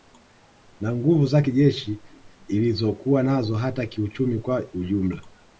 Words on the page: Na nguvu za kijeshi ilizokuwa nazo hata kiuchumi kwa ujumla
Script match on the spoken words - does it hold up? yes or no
yes